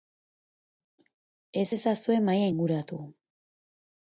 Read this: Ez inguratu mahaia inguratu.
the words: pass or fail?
fail